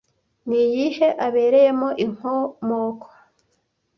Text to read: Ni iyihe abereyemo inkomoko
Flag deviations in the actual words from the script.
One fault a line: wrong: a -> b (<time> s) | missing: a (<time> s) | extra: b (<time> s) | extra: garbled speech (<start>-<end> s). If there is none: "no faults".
no faults